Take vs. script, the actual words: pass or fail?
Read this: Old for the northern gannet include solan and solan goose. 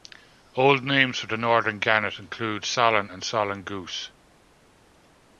fail